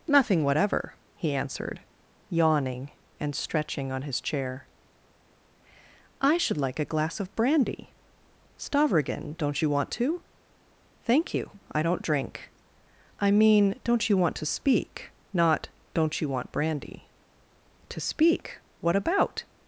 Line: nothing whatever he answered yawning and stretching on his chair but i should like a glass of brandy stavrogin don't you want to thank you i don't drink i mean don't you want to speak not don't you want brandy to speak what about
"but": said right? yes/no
no